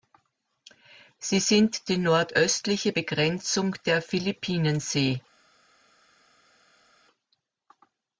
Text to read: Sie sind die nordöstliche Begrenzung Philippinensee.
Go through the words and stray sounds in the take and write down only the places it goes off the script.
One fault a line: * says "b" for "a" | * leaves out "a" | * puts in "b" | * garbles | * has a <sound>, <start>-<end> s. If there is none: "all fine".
* puts in "der"